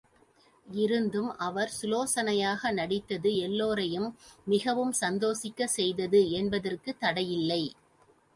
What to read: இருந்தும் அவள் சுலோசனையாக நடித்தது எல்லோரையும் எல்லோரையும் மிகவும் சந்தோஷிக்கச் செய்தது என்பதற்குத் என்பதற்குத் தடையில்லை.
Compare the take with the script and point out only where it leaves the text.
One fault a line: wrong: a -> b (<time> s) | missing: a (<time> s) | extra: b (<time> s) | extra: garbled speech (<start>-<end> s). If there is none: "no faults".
wrong: அவள் -> அவர் (1.4 s)
missing: எல்லோரையும் (4.1 s)
missing: என்பதற்குத் (7.0 s)